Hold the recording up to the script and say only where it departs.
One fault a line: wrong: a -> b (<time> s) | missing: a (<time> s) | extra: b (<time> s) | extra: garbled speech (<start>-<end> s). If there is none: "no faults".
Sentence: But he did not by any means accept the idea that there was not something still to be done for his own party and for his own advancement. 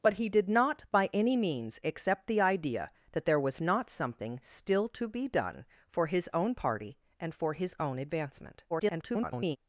extra: garbled speech (8.7-9.6 s)